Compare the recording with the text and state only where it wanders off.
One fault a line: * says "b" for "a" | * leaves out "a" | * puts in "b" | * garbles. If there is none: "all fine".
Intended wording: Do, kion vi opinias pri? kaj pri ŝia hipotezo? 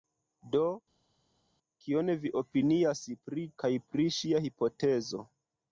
all fine